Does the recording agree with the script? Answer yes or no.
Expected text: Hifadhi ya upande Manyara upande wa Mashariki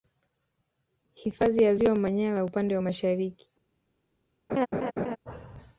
no